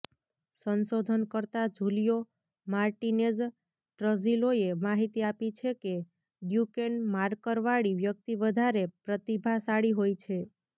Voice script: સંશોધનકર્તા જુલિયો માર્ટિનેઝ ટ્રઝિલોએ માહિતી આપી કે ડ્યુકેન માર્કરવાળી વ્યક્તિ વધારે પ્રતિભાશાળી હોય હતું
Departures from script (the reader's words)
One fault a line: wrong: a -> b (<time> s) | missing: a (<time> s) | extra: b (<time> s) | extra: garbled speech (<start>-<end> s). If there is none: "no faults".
extra: છે (5.6 s)
wrong: હતું -> છે (10.2 s)